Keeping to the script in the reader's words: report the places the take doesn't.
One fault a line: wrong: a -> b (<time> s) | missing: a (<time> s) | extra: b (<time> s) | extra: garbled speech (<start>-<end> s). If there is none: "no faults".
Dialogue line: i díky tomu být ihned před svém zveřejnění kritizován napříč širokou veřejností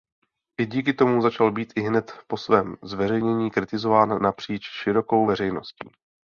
extra: začal (1.2 s)
wrong: před -> po (2.3 s)